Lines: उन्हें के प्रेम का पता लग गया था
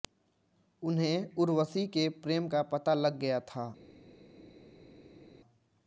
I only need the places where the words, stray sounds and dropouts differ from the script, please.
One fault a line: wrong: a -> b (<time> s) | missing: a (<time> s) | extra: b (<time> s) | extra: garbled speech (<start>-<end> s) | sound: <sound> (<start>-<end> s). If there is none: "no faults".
extra: उर्वशी (1.4 s)